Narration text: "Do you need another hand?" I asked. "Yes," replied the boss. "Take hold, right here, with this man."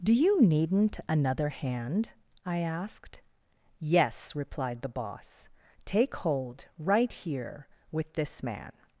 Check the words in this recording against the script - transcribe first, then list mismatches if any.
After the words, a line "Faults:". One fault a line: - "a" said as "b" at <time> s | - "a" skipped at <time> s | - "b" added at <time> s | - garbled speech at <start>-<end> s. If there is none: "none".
"Do you needn't another hand?" I asked. "Yes," replied the boss. "Take hold, right here, with this man."
Faults:
- "need" said as "needn't" at 0.4 s